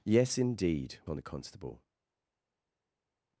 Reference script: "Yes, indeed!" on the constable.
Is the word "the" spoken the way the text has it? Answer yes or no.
yes